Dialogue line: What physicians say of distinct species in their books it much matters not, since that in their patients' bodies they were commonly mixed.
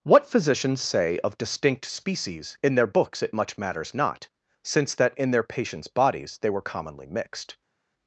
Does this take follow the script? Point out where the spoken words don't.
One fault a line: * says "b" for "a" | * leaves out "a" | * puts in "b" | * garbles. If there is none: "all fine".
all fine